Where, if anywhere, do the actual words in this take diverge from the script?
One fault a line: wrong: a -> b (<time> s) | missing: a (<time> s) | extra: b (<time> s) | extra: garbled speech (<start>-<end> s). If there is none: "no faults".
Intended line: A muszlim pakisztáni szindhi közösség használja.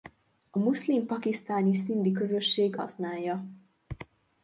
no faults